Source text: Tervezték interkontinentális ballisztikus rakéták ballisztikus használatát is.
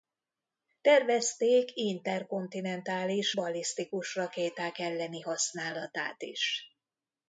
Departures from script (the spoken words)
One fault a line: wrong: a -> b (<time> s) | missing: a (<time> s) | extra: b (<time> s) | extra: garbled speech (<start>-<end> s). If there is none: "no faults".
wrong: ballisztikus -> elleni (4.8 s)